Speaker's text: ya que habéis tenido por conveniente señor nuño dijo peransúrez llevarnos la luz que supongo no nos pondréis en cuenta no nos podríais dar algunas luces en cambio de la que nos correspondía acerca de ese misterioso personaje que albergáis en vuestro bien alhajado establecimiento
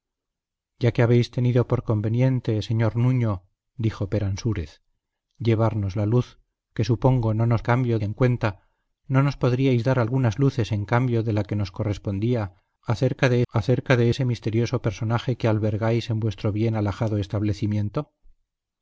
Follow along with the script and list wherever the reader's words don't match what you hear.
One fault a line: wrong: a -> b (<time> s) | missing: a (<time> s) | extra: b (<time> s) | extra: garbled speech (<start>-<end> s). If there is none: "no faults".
wrong: pondréis -> cambio (7.6 s)
extra: acerca de (13.5 s)